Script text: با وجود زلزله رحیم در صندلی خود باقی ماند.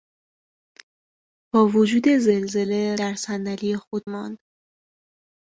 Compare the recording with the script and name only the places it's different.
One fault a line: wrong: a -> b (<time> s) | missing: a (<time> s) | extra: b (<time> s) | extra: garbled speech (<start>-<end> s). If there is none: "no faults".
missing: رحیم (3.0 s)
missing: باقی (4.1 s)